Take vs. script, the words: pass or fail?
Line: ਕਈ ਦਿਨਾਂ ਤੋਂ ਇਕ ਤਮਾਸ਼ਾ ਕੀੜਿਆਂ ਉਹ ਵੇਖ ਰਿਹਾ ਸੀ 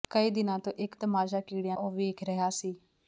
pass